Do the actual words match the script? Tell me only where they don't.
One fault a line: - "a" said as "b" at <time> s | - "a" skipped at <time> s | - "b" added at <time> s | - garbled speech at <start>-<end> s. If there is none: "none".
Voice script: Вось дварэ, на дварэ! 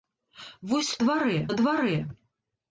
none